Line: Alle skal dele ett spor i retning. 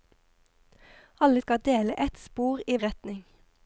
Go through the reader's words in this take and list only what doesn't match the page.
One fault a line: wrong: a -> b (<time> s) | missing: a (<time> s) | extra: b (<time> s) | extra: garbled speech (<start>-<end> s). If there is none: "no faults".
no faults